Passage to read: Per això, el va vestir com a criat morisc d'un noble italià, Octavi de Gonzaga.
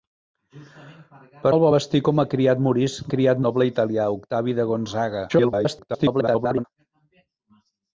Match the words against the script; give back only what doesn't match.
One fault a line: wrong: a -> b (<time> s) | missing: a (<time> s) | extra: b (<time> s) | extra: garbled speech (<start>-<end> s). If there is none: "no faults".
missing: això (1.5 s)
wrong: d'un -> criat (3.1 s)
extra: garbled speech (5.3-6.6 s)